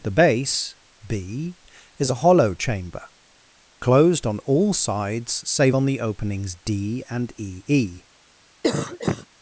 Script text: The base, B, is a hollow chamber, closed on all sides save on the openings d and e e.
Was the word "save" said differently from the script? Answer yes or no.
no